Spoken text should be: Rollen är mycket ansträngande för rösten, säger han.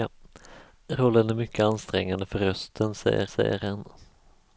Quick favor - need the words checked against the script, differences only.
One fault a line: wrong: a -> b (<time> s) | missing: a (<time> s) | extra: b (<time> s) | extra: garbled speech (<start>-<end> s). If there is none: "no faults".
extra: säger (3.3 s)